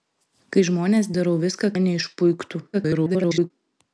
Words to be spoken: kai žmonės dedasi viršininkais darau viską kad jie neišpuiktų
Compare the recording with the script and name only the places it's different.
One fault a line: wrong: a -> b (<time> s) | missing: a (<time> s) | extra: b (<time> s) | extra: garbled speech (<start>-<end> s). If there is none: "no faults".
missing: dedasi viršininkais (1.1 s)
missing: kad (1.7 s)
extra: garbled speech (2.7-3.5 s)